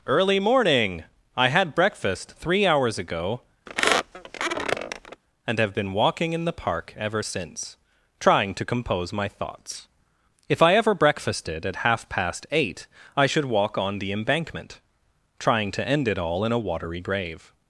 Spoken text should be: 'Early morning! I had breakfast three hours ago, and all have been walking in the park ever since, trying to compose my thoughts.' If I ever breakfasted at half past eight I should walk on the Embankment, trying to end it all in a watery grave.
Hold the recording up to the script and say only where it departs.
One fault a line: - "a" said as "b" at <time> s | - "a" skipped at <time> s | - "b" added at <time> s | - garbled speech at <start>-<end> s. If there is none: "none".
- "all" skipped at 5.6 s